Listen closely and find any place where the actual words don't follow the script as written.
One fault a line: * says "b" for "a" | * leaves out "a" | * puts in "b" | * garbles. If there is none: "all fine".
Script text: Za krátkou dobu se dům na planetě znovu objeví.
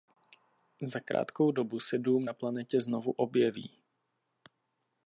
all fine